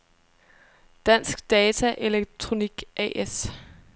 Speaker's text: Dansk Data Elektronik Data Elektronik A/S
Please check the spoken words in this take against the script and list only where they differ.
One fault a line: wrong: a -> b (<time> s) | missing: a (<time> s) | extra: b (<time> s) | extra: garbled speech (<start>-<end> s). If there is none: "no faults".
missing: Data Elektronik (2.8 s)